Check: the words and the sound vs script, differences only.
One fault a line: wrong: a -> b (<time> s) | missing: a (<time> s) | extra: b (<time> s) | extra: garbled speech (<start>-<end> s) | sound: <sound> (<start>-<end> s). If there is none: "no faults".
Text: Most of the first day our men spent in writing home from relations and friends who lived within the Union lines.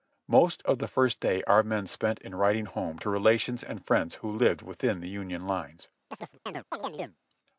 wrong: from -> to (3.0 s)
sound: chirp (6.1-7.2 s)